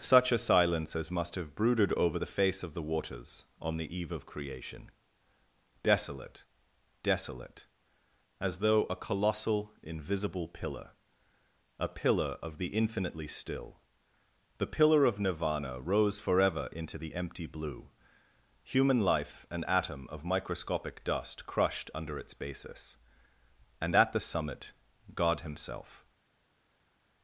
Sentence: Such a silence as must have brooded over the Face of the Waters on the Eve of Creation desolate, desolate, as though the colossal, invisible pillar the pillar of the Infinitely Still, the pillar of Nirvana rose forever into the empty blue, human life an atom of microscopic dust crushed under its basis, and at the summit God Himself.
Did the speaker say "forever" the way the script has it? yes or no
yes